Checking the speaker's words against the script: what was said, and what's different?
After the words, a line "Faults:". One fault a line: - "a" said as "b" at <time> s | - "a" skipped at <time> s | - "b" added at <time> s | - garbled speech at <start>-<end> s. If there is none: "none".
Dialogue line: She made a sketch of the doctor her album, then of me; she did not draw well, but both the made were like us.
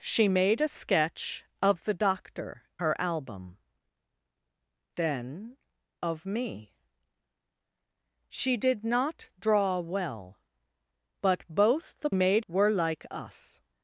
She made a sketch of the doctor her album, then of me; she did not draw well, but both the made were like us.
Faults:
none